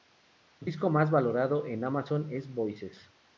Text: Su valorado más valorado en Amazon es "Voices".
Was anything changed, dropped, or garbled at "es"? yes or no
no